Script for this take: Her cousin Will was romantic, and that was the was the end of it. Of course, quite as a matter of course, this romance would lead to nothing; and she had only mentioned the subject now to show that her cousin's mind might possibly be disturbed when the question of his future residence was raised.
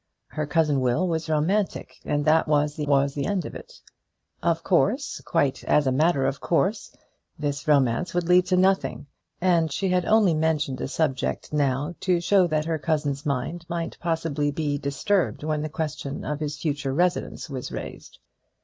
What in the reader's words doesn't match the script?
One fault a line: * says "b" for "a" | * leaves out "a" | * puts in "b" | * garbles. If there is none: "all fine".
all fine